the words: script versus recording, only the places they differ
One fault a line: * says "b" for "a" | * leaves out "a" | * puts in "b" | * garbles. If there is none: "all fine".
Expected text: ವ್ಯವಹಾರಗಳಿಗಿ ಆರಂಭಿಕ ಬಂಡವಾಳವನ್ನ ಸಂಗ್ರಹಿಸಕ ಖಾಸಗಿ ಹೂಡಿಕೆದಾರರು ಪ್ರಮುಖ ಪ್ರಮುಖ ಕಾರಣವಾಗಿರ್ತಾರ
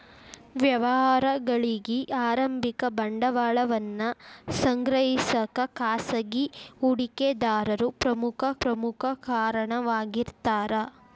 all fine